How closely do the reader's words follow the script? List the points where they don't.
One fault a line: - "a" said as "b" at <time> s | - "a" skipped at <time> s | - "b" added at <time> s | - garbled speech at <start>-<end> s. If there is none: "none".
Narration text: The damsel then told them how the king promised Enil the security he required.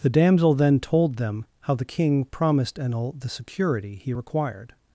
none